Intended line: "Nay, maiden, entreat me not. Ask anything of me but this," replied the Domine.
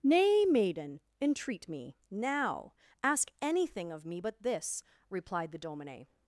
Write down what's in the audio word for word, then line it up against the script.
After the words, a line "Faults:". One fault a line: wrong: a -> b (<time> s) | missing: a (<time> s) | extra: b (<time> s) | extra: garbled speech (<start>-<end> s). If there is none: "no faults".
"Nay, maiden, entreat me now. Ask anything of me but this," replied the Domine.
Faults:
wrong: not -> now (2.1 s)